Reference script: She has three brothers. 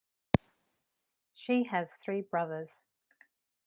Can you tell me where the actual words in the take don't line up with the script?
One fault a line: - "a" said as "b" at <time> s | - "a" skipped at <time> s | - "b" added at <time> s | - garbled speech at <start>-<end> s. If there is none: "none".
none